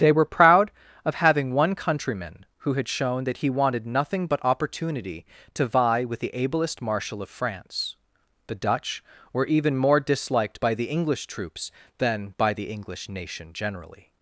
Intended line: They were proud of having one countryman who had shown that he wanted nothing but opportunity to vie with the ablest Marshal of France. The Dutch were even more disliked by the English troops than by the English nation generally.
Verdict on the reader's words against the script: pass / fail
pass